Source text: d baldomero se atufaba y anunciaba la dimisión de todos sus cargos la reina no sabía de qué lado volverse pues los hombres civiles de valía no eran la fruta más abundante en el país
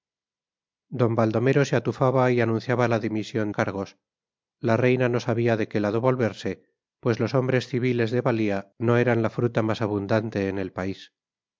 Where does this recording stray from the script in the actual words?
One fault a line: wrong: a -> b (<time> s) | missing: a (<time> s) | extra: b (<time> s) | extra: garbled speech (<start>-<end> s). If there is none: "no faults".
missing: de todos sus (3.5 s)